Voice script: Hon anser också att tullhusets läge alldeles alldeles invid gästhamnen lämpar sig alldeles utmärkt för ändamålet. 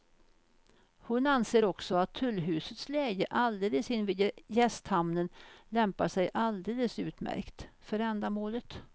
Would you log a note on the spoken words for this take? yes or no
yes